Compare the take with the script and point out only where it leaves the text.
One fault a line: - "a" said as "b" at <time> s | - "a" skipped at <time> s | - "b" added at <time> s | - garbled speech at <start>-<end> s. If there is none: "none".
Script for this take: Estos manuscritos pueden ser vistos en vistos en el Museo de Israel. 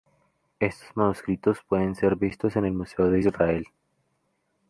- "vistos en" skipped at 2.6 s